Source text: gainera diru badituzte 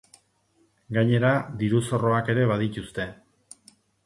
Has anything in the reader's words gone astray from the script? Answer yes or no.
yes